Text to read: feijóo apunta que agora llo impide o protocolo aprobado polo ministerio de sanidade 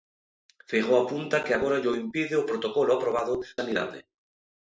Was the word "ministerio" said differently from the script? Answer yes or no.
yes